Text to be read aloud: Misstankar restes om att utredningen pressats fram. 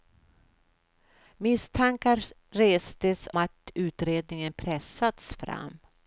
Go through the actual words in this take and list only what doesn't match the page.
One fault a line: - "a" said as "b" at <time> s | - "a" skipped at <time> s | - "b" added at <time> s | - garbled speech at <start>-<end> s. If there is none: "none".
- "om" skipped at 3.3 s